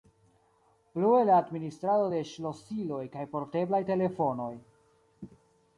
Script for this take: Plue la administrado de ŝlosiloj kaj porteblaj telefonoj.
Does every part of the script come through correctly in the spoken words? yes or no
yes